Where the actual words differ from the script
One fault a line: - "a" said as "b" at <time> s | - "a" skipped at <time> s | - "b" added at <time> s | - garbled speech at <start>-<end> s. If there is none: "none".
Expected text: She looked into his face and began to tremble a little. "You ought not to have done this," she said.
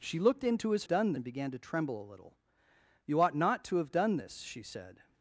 - "face" said as "done" at 0.9 s